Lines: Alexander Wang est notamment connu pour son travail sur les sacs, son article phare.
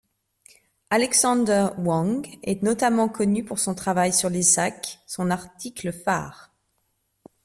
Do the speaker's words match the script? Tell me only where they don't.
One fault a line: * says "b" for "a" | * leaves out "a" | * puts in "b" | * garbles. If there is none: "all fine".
all fine